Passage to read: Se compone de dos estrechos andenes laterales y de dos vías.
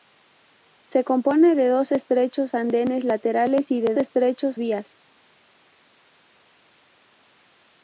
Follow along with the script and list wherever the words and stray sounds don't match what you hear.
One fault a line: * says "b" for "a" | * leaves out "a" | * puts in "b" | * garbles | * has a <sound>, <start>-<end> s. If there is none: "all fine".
* says "estrechos" for "dos"